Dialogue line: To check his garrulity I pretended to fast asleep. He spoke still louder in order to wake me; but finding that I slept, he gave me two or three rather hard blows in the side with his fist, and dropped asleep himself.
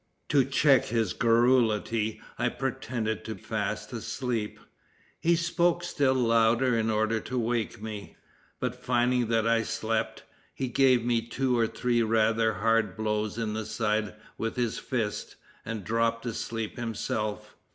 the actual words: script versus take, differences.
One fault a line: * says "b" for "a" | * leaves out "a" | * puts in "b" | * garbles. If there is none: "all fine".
all fine